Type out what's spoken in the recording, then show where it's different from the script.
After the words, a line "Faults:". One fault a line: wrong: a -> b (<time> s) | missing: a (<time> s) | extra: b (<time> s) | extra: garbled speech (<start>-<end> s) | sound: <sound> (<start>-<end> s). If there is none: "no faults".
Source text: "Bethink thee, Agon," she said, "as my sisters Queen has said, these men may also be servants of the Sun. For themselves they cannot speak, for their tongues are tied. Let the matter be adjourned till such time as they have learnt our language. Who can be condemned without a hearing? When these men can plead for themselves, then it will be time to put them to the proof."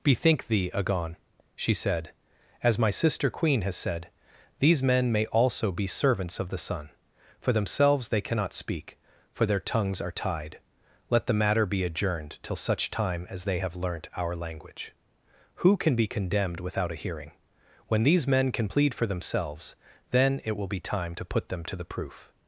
"Bethink thee, Agon," she said, "as my sister Queen has said, these men may also be servants of the Sun. For themselves they cannot speak, for their tongues are tied. Let the matter be adjourned till such time as they have learnt our language. Who can be condemned without a hearing? When these men can plead for themselves, then it will be time to put them to the proof."
Faults:
wrong: sisters -> sister (2.9 s)